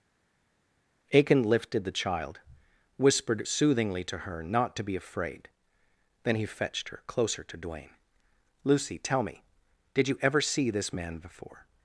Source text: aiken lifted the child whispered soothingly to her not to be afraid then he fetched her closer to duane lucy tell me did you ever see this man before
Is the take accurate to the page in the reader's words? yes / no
yes